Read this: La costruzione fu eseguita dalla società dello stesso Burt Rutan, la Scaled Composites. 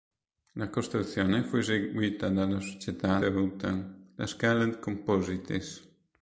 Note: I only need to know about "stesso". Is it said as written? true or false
false